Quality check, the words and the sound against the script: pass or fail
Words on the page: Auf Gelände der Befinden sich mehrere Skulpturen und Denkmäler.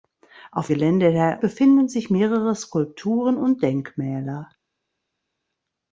pass